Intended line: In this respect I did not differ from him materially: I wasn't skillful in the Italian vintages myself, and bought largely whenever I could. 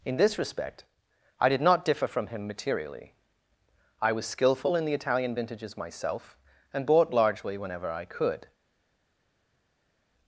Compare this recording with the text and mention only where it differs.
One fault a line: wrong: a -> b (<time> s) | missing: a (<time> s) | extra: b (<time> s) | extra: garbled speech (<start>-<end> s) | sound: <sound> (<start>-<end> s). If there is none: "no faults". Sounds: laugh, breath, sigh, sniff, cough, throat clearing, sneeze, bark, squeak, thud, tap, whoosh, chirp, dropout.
wrong: wasn't -> was (4.1 s)